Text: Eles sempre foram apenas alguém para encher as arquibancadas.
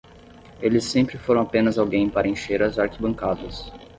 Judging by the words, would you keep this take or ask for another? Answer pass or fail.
pass